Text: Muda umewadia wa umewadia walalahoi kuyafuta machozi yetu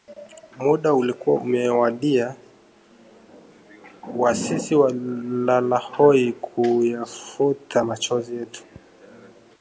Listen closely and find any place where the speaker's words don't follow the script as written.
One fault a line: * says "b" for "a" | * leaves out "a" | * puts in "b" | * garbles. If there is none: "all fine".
* puts in "ulikuwa"
* says "sisi" for "umewadia"